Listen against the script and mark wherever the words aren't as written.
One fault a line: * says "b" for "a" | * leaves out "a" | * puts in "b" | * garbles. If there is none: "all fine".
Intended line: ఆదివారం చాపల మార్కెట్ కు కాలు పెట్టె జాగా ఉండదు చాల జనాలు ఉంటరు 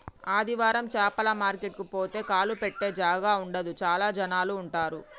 * puts in "పోతే"